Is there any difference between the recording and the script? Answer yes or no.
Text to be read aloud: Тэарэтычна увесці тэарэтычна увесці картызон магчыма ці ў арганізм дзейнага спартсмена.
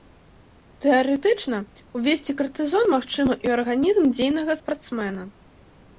yes